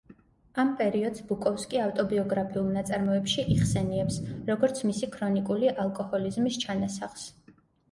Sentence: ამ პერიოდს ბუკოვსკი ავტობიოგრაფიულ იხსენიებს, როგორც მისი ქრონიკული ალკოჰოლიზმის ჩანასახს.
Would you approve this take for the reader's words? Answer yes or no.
no